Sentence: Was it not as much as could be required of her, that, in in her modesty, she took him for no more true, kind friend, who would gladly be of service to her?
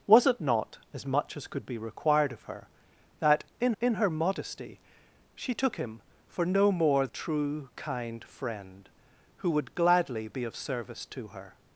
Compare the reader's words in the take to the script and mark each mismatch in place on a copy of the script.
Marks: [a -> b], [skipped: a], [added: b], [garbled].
Was it not as much as could be required of her, that, in in her modesty, she took him for no more true, kind friend, who would gladly be of service to her?